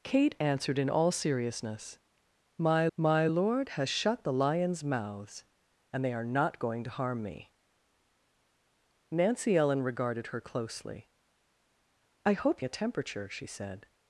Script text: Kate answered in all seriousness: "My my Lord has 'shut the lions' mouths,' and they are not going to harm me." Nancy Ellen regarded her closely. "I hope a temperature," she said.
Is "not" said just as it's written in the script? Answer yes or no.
yes